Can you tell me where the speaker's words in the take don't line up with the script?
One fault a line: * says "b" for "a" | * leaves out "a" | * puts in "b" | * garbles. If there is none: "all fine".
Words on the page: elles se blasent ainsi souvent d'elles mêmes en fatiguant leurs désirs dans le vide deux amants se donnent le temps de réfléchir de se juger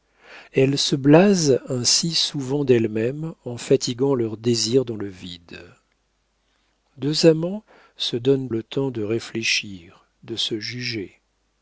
all fine